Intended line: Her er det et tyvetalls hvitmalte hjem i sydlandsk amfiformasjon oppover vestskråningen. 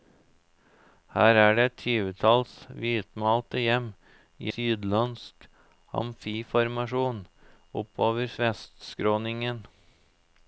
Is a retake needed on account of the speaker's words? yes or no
no